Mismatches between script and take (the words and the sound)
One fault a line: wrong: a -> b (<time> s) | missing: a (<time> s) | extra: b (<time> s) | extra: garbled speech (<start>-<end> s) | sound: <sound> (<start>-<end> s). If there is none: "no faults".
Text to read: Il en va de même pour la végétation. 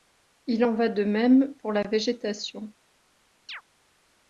sound: chirp (3.5-3.6 s)